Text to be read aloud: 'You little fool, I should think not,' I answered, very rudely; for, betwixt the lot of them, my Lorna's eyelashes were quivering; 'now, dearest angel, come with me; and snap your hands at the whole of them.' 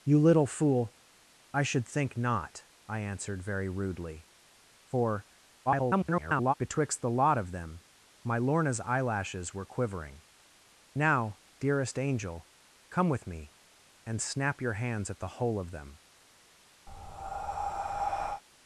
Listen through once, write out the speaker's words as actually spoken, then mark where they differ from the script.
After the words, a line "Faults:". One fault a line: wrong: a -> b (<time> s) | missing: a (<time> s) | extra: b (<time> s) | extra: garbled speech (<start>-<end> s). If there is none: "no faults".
'You little fool, I should think not,' I answered, very rudely; for, [garbled] betwixt the lot of them, my Lorna's eyelashes were quivering; 'now, dearest angel, come with me; and snap your hands at the whole of them.'
Faults:
extra: garbled speech (5.7-6.5 s)